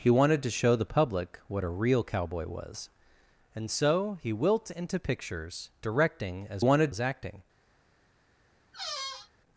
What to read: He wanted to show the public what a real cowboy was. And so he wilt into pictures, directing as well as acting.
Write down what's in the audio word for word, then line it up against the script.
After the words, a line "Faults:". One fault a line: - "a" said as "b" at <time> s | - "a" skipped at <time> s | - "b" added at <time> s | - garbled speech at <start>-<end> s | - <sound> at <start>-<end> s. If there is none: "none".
He wanted to show the public what a real cowboy was. And so he wilt into pictures, directing as wanted as acting.
Faults:
- "well" said as "wanted" at 6.6 s
- squeak at 8.7-9.3 s